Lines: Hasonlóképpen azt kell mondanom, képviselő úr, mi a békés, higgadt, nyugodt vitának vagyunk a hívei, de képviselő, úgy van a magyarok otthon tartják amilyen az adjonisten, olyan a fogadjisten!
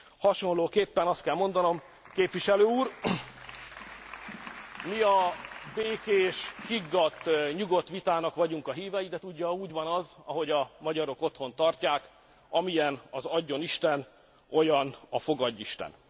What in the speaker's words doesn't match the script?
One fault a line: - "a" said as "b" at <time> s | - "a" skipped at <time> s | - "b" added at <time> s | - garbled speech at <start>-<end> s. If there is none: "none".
- "képviselő" said as "tudja" at 9.2 s
- "az ahogy" added at 9.9 s